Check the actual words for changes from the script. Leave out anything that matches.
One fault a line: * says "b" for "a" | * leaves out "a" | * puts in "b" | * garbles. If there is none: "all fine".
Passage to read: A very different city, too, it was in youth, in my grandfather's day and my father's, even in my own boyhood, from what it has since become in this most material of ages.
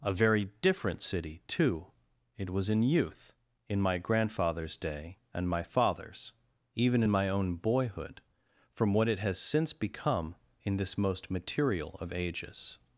all fine